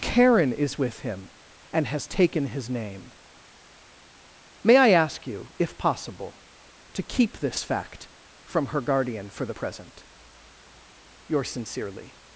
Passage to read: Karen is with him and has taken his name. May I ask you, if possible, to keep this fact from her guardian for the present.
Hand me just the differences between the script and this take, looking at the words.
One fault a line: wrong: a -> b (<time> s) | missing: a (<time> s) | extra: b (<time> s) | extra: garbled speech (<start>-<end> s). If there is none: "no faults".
extra: Yours sincerely (11.3 s)